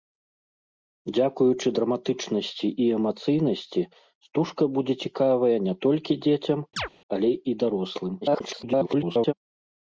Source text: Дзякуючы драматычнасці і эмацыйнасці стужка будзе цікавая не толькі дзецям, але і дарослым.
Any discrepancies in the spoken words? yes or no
yes